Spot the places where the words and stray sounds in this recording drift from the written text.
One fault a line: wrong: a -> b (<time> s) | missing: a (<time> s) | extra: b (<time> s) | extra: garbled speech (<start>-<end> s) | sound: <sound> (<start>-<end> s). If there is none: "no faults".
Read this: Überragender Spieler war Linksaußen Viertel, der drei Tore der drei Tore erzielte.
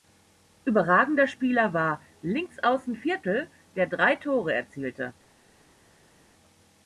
missing: der drei Tore (4.5 s)